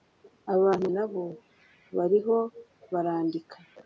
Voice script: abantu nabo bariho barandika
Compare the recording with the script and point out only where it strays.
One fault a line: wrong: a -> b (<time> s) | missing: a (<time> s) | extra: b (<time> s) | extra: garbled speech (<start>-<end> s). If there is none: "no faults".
no faults